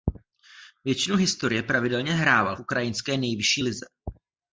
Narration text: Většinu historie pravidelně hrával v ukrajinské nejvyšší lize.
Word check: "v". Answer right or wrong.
wrong